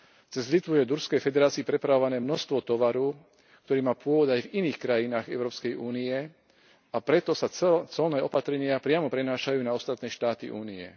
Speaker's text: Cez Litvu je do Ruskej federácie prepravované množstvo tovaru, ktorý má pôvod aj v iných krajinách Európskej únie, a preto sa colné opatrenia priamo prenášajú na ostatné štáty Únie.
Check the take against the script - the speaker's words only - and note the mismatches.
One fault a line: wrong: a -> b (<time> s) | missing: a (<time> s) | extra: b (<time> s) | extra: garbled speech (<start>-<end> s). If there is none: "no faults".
no faults